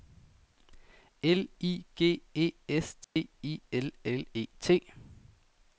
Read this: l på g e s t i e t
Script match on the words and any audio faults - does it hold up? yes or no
no